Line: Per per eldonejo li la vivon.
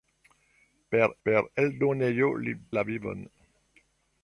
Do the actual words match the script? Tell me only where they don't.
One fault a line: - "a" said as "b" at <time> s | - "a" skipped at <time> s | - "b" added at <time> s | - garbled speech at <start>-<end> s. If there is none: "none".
none